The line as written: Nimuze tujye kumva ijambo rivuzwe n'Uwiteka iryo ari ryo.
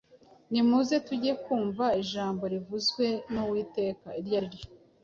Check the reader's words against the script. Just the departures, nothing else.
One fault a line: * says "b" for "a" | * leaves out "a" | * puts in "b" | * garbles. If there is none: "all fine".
all fine